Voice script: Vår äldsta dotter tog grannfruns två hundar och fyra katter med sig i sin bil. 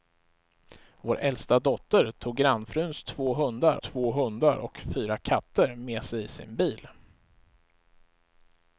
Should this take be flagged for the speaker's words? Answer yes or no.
yes